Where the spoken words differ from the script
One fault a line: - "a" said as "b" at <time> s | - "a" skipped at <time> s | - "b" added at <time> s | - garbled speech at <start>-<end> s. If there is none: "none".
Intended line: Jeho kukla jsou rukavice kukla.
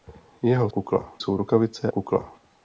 none